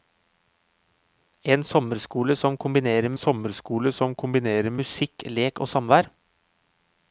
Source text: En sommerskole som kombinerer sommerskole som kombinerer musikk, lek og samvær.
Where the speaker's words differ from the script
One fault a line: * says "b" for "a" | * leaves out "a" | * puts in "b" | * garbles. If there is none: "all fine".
all fine